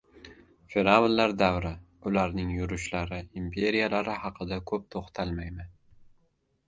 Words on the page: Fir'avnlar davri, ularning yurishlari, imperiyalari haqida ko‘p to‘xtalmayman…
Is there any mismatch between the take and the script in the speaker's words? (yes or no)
no